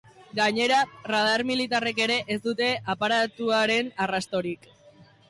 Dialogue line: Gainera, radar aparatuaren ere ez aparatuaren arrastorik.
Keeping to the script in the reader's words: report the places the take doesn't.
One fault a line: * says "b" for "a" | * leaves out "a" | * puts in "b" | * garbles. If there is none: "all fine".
* says "militarrek" for "aparatuaren"
* puts in "dute"